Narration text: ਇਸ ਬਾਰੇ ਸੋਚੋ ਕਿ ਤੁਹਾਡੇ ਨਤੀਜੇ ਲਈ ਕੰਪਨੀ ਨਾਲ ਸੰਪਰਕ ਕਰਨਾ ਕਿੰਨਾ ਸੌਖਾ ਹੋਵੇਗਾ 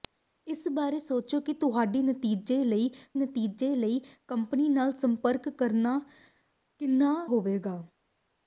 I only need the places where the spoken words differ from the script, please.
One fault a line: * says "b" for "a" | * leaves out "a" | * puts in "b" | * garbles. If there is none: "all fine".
* puts in "ਨਤੀਜੇ ਲਈ"
* leaves out "ਸੌਖਾ"